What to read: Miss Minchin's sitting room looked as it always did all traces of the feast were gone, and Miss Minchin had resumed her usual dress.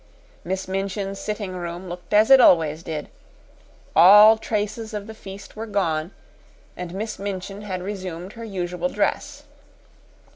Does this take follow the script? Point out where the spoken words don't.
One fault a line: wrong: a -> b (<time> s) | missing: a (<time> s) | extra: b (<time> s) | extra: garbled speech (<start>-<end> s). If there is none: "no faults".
no faults